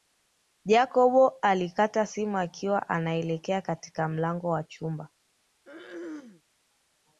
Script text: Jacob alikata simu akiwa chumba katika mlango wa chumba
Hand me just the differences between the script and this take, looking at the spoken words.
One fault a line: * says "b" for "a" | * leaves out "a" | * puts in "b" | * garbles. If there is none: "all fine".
* says "anaelekea" for "chumba"